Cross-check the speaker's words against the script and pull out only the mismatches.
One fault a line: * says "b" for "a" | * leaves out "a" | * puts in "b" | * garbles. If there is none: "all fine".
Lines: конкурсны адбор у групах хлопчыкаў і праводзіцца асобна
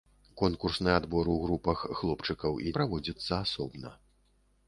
all fine